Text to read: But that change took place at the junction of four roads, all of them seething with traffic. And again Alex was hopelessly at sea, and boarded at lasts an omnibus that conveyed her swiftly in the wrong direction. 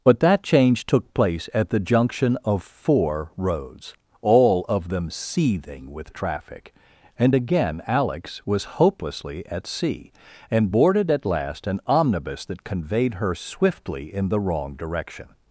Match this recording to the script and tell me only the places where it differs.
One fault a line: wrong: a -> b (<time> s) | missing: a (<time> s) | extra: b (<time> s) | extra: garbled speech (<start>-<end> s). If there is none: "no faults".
wrong: lasts -> last (11.2 s)